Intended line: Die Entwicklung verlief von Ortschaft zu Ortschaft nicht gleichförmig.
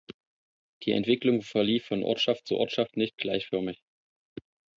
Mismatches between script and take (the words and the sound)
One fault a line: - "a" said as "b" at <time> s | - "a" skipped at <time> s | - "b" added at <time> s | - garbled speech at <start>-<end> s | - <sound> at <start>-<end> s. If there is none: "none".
none